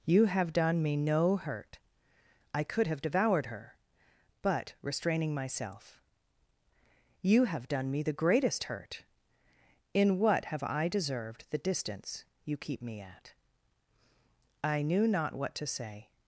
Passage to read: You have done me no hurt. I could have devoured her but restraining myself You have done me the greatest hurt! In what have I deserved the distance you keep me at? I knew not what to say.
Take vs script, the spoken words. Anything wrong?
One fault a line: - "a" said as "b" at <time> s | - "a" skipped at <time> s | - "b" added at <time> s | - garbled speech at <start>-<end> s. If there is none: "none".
none